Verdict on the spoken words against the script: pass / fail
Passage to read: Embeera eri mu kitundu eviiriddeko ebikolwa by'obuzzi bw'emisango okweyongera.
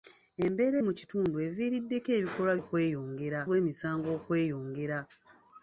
fail